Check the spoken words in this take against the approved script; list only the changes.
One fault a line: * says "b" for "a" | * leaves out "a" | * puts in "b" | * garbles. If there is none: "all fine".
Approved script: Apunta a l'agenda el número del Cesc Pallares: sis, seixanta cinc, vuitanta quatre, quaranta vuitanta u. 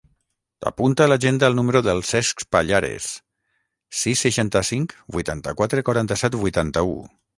* puts in "set"